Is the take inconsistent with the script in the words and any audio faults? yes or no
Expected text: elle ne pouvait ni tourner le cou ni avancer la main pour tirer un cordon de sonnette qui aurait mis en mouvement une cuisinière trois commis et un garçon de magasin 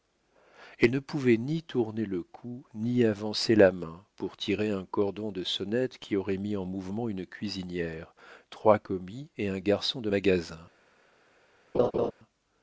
yes